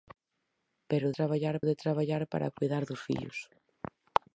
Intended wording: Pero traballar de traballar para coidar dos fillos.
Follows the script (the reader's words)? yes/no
yes